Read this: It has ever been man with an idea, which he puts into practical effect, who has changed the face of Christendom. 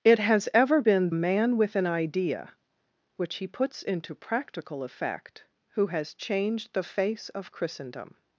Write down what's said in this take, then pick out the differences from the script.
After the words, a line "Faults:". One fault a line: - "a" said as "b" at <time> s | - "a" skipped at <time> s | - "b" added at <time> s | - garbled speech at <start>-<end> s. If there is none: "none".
It has ever been man with an idea, which he puts into practical effect, who has changed the face of Christendom.
Faults:
none